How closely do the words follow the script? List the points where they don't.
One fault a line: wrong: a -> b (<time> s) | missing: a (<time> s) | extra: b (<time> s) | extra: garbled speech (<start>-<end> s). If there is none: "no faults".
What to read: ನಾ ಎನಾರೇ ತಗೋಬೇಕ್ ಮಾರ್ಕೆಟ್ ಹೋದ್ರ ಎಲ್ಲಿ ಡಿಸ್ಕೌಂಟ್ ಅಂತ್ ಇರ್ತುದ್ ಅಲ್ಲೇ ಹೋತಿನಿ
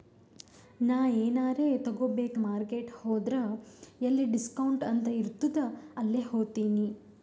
no faults